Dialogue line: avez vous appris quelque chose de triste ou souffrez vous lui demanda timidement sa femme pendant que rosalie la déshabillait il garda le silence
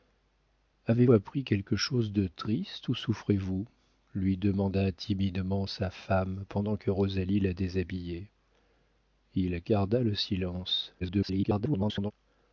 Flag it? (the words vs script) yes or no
yes